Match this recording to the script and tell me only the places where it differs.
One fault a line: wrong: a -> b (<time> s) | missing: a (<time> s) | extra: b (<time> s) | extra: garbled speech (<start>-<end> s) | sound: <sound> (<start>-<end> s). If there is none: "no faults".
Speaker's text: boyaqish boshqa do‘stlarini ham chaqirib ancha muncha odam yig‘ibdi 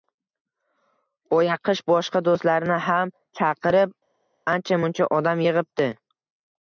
no faults